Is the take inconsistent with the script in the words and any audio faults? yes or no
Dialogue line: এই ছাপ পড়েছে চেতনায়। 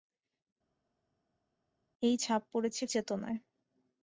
no